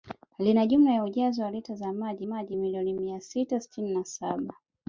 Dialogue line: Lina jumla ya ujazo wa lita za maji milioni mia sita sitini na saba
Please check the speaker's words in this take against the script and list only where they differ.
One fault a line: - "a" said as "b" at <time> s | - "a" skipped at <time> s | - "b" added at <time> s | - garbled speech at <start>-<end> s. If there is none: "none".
- "maji" added at 2.2 s